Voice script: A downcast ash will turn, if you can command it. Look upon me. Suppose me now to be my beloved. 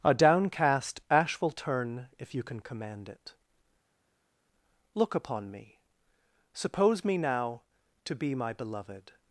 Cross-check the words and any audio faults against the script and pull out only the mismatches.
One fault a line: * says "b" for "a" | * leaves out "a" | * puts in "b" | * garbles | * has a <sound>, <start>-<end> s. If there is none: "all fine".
all fine